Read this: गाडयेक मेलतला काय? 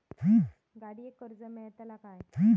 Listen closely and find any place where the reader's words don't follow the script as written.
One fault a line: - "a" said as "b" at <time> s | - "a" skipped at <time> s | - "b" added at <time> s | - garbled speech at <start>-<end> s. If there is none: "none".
- "कर्ज" added at 1.2 s